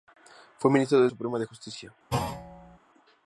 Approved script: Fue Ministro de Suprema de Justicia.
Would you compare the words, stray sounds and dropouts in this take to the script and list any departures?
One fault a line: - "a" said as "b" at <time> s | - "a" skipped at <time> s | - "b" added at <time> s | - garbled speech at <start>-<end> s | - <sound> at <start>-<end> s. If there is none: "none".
- thud at 2.1-2.8 s